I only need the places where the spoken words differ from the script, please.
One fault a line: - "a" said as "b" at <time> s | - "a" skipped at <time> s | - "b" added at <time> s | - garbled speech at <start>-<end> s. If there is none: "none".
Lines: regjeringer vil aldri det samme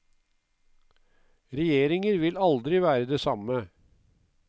- "være" added at 2.8 s